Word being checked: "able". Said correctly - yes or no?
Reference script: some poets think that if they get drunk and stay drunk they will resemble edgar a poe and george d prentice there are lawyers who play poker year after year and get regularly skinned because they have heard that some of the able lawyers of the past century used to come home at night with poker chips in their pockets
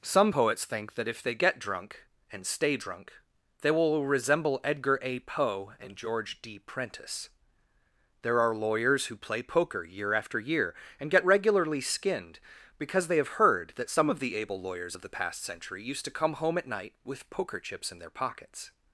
yes